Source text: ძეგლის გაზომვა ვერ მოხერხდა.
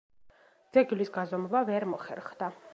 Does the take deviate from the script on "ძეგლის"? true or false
false